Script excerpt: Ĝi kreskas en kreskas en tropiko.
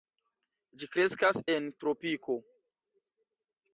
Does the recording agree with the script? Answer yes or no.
no